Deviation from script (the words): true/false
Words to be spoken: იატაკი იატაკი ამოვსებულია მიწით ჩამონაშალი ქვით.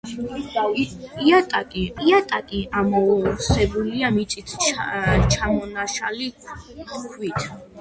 false